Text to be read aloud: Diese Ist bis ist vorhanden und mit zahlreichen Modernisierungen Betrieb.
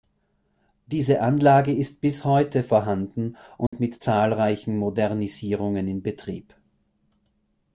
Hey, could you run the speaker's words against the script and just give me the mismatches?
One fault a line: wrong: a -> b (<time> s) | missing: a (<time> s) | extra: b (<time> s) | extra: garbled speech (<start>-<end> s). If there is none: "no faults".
extra: Anlage (1.2 s)
wrong: ist -> heute (2.2 s)
extra: in (5.9 s)